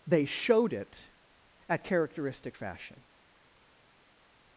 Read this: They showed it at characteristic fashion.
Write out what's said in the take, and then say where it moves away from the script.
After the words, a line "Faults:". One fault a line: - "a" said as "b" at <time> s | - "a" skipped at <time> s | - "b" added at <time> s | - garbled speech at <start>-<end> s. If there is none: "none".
They showed it at characteristic fashion.
Faults:
none